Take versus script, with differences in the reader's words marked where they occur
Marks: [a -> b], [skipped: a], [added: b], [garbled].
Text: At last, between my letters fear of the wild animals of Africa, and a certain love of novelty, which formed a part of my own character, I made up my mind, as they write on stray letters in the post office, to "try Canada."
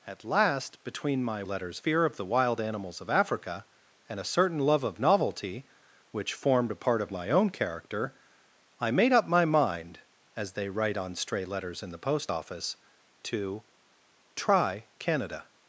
At last, between my letters fear of the wild animals of Africa, and a certain love of novelty, which formed a part of my own character, I made up my mind, as they write on stray letters in the post office, to "try Canada."